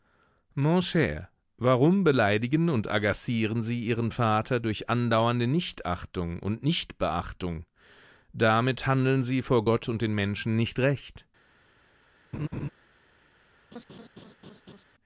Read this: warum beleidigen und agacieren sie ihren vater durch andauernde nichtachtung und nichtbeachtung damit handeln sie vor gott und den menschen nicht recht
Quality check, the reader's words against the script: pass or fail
pass